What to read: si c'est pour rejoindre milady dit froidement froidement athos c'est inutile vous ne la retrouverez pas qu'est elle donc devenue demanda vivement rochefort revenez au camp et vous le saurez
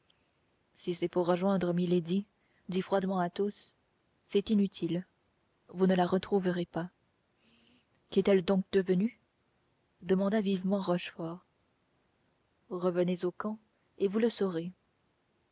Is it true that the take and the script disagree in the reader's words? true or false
true